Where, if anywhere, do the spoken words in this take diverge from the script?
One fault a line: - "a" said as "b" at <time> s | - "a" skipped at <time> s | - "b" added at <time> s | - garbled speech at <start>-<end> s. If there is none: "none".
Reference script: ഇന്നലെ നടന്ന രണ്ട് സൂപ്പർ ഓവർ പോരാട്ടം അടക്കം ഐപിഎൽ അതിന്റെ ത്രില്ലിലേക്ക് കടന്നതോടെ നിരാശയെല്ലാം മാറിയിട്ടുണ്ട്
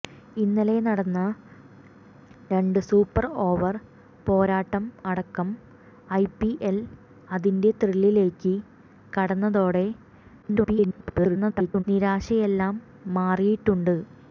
- garbled speech at 10.4-11.8 s